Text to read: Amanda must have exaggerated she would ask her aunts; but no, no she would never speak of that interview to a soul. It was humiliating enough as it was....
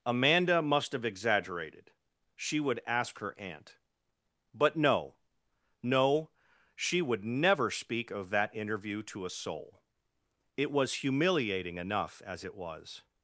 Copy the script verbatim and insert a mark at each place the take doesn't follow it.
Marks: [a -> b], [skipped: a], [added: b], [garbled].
Amanda must have exaggerated she would ask her [aunts; -> aunt] but no, no she would never speak of that interview to a soul. It was humiliating enough as it was....